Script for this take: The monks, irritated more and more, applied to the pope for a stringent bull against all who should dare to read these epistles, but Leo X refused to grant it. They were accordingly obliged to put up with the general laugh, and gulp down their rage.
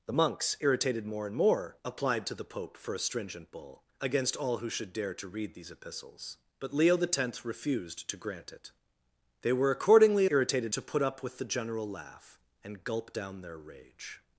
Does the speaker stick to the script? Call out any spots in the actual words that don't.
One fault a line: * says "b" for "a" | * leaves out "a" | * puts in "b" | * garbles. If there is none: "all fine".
* says "irritated" for "obliged"